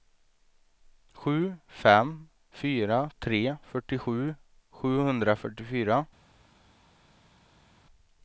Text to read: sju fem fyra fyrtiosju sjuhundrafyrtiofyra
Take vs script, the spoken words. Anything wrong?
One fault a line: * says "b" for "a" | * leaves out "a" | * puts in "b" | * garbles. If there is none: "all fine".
* puts in "tre"